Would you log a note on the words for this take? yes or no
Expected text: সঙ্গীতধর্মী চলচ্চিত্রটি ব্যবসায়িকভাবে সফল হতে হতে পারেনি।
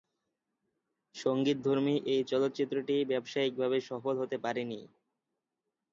yes